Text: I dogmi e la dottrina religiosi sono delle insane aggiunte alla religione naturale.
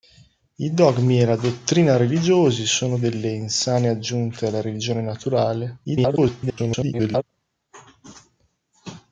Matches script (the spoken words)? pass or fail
fail